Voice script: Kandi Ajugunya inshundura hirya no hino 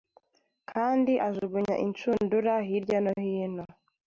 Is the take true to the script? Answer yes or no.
yes